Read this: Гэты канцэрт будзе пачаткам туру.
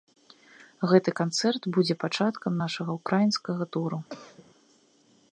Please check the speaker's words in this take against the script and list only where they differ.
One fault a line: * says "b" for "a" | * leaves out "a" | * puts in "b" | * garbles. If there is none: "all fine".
* puts in "нашага ўкраінскага"